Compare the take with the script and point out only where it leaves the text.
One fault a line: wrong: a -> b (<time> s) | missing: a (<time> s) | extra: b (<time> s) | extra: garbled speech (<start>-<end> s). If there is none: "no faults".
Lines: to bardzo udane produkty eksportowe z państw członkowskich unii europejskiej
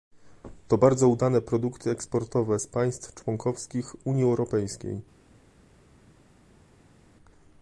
no faults